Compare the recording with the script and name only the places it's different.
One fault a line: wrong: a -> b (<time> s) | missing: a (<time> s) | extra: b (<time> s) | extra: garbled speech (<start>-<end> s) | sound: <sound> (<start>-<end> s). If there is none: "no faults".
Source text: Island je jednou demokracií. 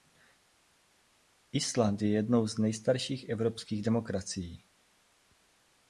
extra: z nejstarších evropských (2.5 s)